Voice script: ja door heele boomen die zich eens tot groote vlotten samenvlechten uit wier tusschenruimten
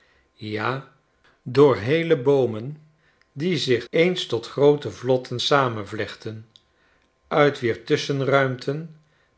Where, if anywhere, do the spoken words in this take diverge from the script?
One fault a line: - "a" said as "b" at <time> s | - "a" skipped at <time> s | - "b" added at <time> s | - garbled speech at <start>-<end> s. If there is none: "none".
none